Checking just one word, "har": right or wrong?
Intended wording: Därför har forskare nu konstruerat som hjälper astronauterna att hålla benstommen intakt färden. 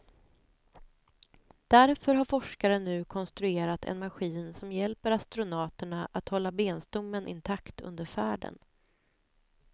right